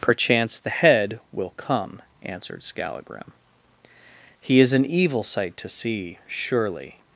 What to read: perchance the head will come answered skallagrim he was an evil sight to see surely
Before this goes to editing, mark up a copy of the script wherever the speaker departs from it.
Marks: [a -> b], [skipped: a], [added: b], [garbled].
perchance the head will come answered skallagrim he [was -> is] an evil sight to see surely